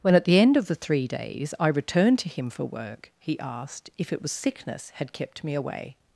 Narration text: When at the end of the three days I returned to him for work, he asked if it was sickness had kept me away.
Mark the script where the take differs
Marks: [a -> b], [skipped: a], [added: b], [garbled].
When at the end of the three days I returned to him for work, he asked if it was sickness had kept me away.